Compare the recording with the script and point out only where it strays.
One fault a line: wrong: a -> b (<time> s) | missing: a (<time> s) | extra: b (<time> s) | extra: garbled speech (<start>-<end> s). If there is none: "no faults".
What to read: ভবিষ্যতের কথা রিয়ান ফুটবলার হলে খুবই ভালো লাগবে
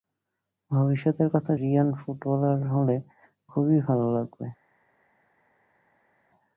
no faults